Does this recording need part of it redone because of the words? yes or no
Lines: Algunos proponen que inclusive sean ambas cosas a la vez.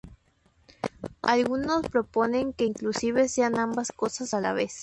no